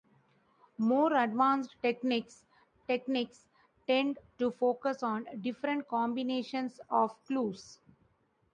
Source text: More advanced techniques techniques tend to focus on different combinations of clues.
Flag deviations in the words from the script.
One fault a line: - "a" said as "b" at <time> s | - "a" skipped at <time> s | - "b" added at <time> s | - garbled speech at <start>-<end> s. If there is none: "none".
none